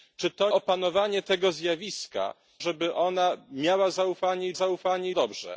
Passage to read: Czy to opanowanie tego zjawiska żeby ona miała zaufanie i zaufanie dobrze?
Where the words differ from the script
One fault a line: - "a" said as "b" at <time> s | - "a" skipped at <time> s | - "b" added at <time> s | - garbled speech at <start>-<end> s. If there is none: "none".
none